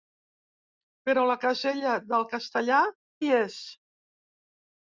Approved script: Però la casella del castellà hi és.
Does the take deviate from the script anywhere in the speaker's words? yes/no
no